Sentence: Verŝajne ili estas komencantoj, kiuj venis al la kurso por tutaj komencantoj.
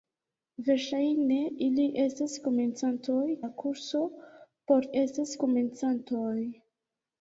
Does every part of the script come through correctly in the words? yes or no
no